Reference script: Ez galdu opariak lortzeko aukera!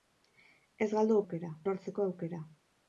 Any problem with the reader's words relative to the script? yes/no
yes